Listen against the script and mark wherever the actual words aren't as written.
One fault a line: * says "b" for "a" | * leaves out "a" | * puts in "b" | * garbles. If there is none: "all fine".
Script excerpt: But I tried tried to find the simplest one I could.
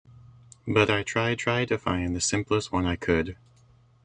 all fine